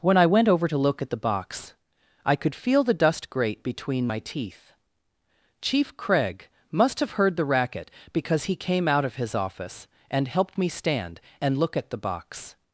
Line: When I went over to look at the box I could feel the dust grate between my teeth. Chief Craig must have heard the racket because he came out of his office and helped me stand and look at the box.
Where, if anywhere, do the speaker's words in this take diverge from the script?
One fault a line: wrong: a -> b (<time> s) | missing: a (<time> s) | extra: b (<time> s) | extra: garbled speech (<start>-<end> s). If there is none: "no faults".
no faults